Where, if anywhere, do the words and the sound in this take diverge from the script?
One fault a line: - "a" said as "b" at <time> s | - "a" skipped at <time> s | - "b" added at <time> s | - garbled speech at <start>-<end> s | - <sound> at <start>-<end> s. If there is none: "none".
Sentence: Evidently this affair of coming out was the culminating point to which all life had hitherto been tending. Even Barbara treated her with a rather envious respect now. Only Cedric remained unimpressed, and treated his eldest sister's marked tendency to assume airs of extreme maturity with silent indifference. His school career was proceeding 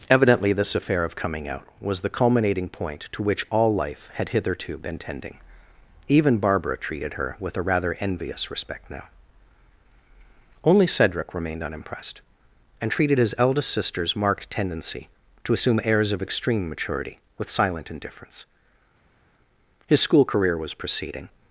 none